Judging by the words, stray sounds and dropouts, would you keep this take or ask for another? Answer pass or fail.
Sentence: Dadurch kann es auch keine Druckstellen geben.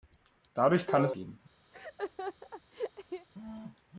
fail